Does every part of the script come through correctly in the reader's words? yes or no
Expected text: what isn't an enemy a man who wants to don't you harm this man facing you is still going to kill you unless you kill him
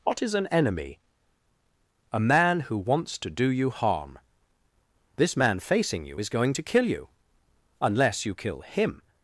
no